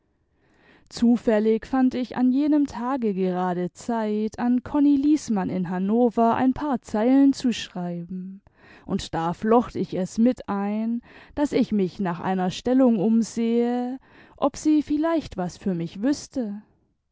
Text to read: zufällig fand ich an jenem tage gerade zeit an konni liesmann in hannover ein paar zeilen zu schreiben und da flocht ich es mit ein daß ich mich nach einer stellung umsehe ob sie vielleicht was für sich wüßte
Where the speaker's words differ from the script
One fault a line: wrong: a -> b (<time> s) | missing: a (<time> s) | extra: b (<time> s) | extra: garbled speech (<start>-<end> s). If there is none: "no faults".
wrong: sich -> mich (15.7 s)